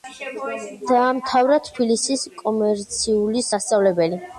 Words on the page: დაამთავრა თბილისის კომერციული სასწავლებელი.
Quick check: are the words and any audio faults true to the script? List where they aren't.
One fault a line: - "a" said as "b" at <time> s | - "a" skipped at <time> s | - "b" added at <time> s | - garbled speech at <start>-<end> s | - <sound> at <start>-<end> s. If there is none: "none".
none